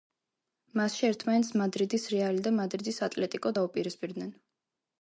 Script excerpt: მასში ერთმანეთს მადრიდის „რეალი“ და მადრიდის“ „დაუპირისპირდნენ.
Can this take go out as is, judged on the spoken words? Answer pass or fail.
fail